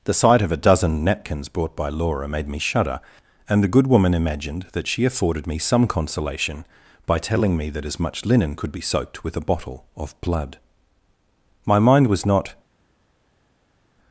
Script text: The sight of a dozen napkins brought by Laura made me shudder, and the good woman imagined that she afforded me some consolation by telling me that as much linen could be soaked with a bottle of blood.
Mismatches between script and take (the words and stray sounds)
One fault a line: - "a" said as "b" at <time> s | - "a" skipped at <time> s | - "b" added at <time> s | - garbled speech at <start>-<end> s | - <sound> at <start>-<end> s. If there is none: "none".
- "My mind was not" added at 11.7 s